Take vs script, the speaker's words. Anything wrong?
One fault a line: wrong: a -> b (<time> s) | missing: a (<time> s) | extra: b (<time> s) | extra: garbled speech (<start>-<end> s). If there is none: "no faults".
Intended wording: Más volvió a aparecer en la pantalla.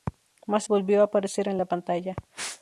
no faults